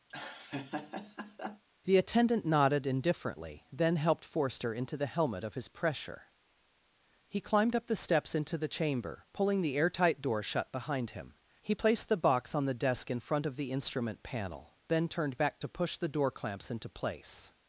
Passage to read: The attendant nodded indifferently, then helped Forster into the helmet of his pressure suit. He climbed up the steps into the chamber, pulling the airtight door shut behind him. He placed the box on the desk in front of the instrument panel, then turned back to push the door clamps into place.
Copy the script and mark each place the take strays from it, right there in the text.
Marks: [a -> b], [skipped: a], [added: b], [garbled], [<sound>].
[laugh] The attendant nodded indifferently, then helped Forster into the helmet of his pressure [skipped: suit.] He climbed up the steps into the chamber, pulling the airtight door shut behind him. He placed the box on the desk in front of the instrument panel, then turned back to push the door clamps into place.